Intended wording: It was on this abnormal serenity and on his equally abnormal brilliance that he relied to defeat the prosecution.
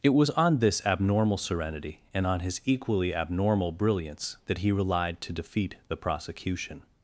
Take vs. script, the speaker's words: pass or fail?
pass